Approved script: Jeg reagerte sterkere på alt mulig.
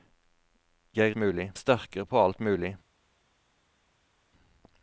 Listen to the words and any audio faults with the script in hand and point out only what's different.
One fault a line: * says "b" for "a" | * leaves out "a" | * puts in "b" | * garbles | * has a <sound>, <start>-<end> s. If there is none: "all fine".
* says "mulig" for "reagerte"